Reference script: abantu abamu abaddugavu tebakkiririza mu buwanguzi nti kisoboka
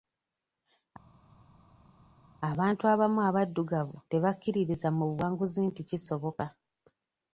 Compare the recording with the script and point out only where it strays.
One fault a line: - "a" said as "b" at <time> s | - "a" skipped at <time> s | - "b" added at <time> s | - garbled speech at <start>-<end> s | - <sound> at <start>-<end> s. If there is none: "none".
none